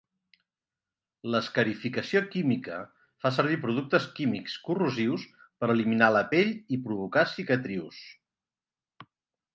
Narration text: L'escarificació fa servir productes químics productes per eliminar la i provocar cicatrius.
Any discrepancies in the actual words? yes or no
yes